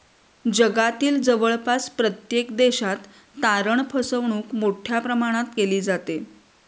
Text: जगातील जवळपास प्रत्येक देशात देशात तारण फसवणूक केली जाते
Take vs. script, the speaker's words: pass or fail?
fail